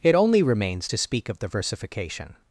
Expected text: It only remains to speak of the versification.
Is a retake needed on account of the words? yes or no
no